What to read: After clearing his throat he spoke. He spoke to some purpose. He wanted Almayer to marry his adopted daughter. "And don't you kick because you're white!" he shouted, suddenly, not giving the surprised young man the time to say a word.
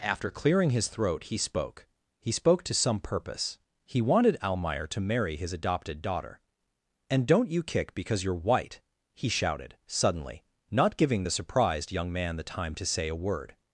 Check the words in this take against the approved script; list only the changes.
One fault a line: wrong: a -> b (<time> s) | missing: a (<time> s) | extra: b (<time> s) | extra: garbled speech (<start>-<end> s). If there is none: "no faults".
no faults